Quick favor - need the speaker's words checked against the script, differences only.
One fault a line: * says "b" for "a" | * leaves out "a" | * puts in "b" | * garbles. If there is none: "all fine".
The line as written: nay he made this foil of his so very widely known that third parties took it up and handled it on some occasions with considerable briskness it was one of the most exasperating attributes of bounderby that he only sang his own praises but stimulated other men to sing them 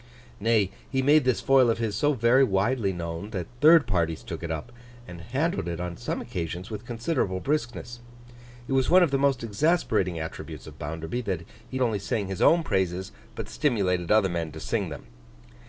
all fine